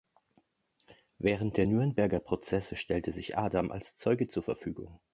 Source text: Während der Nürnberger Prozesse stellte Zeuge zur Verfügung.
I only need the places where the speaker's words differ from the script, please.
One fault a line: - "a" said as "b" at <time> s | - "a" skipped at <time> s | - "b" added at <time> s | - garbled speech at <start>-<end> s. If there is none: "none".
- "sich Adam als" added at 3.1 s